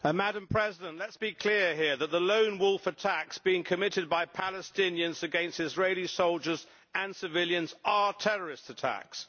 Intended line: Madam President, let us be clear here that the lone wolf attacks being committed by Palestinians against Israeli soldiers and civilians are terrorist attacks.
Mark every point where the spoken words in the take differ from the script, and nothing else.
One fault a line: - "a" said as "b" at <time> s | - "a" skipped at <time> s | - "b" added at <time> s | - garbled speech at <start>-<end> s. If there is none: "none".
none